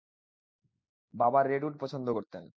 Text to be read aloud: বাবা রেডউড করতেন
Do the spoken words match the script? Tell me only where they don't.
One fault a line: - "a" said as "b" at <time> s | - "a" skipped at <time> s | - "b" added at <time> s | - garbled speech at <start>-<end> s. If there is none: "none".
- "পছন্দ" added at 1.8 s